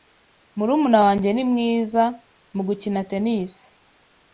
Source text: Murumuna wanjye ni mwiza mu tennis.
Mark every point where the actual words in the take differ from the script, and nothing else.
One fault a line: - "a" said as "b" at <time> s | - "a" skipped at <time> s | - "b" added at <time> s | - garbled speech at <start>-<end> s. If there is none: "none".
- "gukina" added at 2.7 s